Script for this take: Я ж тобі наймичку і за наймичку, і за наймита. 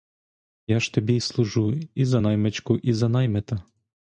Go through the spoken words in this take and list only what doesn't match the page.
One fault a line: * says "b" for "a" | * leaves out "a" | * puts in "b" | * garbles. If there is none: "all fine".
* says "служу" for "наймичку"